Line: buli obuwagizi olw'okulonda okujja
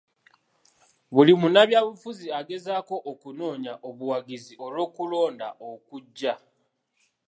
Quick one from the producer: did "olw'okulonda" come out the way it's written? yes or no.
yes